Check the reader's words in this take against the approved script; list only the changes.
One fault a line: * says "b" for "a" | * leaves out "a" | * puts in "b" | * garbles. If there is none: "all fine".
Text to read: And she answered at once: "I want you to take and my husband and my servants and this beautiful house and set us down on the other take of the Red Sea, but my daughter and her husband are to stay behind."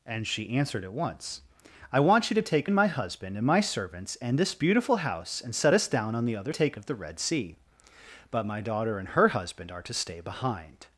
all fine